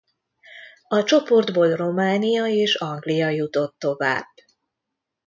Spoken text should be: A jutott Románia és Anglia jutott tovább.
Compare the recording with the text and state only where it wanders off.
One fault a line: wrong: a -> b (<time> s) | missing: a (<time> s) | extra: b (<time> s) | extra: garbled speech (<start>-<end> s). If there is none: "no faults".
wrong: jutott -> csoportból (1.0 s)